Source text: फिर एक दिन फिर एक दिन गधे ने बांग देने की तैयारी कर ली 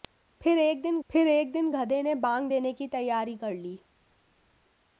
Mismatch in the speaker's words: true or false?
false